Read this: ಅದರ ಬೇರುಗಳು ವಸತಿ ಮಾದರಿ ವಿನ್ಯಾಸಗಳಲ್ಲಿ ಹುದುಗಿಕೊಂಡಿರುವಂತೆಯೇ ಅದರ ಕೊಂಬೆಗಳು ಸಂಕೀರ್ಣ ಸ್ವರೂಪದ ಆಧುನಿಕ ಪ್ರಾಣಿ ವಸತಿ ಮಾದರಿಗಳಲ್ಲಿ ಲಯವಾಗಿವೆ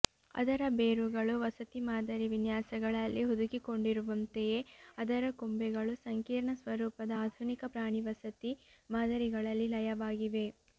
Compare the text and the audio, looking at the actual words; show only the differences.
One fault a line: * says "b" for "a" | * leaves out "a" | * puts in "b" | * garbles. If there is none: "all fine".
all fine